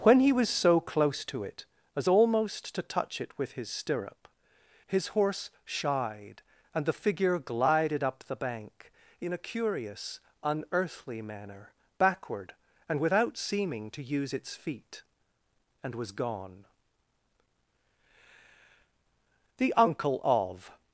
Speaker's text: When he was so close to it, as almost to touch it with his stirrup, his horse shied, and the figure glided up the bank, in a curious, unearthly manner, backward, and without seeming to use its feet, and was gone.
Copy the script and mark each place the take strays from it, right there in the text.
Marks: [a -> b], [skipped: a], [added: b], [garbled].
When he was so close to it, as almost to touch it with his stirrup, his horse shied, and the figure glided up the bank, in a curious, unearthly manner, backward, and without seeming to use its feet, and was gone. [added: The uncle of]